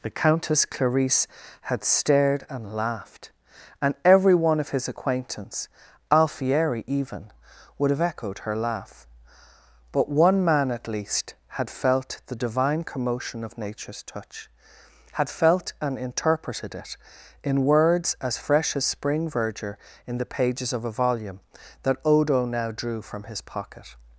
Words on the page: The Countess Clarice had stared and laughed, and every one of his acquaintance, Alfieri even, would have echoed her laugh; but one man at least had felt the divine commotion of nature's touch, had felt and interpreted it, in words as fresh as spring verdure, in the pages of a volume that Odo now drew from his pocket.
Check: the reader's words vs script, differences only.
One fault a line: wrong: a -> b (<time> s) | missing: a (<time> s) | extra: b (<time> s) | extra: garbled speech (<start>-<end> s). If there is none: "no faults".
no faults